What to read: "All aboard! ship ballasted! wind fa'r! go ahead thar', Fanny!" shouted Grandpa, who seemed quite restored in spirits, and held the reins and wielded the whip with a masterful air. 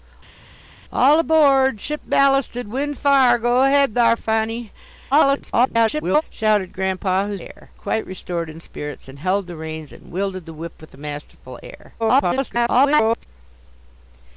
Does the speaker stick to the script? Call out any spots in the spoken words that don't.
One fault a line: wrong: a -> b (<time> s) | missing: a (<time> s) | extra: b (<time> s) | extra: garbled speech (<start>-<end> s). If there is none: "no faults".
extra: garbled speech (5.1-6.2 s)
wrong: seemed -> air (7.4 s)
extra: garbled speech (12.0-13.3 s)